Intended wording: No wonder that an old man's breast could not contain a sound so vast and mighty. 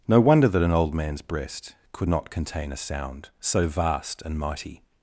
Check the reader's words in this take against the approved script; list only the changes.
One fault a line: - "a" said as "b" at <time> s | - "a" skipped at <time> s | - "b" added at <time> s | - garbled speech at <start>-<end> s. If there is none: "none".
none